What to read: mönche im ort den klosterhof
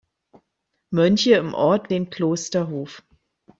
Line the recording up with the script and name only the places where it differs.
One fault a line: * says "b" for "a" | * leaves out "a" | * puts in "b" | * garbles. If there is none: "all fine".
all fine